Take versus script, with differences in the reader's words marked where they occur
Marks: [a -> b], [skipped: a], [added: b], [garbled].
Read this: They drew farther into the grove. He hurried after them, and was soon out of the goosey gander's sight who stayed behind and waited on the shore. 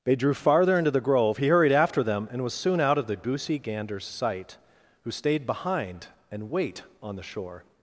They drew farther into the grove. He hurried after them, and was soon out of the goosey gander's sight who stayed behind and [waited -> wait] on the shore.